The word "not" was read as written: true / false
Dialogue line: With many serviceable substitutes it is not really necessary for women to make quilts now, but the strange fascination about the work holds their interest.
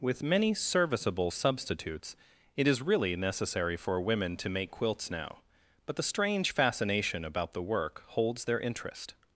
false